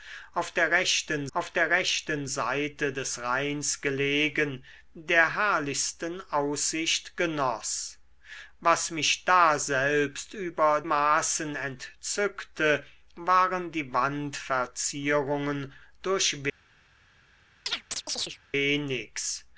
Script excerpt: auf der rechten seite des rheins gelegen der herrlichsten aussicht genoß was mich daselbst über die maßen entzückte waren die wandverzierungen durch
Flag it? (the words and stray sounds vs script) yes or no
yes